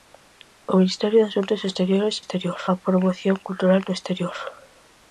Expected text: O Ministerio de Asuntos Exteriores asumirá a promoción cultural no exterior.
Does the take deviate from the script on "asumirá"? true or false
true